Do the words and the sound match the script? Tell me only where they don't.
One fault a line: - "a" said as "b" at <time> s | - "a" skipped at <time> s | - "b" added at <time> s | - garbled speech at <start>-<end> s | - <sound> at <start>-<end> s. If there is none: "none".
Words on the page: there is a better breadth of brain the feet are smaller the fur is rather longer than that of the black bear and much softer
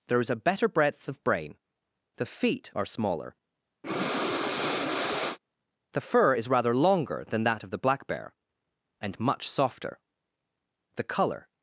- breath at 3.8-5.4 s
- "the color" added at 11.0 s